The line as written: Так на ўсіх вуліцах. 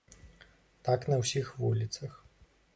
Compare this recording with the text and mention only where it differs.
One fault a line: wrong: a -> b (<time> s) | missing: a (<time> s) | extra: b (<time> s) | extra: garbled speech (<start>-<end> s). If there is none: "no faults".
no faults